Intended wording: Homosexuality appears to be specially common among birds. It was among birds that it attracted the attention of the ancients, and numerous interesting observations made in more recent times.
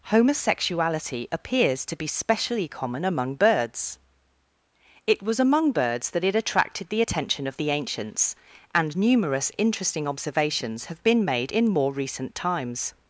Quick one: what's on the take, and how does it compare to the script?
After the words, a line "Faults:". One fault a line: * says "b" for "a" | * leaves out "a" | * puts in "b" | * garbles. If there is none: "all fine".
Homosexuality appears to be specially common among birds. It was among birds that it attracted the attention of the ancients, and numerous interesting observations have been made in more recent times.
Faults:
* puts in "have been"